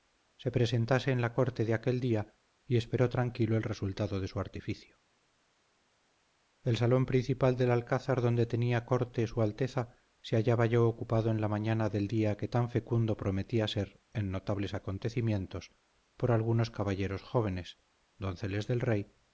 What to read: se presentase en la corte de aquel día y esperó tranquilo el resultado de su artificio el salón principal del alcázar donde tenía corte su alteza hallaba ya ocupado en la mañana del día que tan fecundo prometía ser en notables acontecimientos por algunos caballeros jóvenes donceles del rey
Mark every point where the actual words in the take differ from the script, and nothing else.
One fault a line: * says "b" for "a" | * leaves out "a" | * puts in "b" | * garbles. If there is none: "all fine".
* puts in "se"